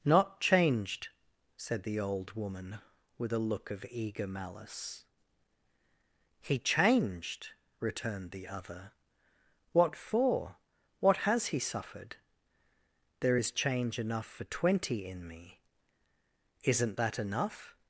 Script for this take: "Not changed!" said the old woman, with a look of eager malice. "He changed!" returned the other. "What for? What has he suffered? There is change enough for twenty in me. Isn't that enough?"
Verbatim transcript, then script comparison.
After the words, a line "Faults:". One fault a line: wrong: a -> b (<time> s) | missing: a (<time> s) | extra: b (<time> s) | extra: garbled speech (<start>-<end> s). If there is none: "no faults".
"Not changed!" said the old woman, with a look of eager malice. "He changed!" returned the other. "What for? What has he suffered? There is change enough for twenty in me. Isn't that enough?"
Faults:
no faults